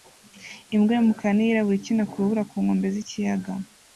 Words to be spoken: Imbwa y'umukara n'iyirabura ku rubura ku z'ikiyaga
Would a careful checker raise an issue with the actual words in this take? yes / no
yes